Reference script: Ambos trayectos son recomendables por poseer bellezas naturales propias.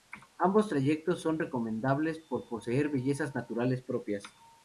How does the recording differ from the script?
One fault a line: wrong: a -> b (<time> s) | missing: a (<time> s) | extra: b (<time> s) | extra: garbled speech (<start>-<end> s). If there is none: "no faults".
no faults